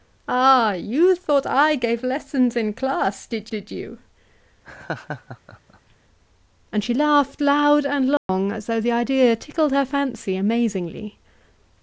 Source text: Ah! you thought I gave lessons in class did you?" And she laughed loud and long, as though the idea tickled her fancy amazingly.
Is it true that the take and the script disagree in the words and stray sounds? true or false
true